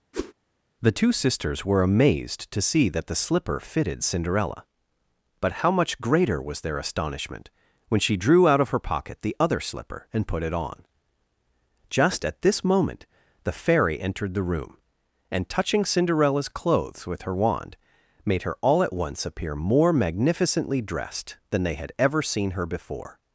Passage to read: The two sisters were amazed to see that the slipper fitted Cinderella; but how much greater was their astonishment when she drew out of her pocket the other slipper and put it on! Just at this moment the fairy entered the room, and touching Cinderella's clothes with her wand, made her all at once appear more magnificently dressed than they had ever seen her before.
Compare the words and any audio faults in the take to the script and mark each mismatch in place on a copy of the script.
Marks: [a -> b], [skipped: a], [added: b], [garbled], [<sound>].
[whoosh] The two sisters were amazed to see that the slipper fitted Cinderella; but how much greater was their astonishment when she drew out of her pocket the other slipper and put it on! Just at this moment the fairy entered the room, and touching Cinderella's clothes with her wand, made her all at once appear more magnificently dressed than they had ever seen her before.